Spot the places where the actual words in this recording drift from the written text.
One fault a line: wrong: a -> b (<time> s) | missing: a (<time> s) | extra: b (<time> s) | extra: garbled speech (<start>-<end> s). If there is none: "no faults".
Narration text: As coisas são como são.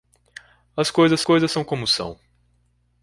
extra: coisas (1.2 s)